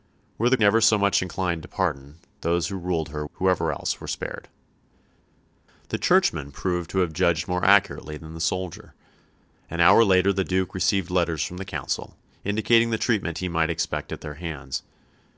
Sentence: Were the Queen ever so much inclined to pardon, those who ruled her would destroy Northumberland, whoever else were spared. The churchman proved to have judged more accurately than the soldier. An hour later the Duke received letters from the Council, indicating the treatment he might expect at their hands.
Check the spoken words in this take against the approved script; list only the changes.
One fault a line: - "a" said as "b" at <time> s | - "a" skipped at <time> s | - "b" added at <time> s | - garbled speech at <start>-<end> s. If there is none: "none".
- "Queen" skipped at 0.6 s
- "would destroy Northumberland" skipped at 3.2 s